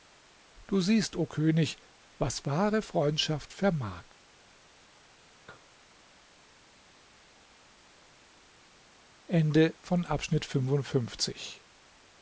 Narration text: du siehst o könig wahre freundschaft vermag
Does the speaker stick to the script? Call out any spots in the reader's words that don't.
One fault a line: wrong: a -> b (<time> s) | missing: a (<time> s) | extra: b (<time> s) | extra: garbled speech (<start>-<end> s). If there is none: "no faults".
extra: was (2.2 s)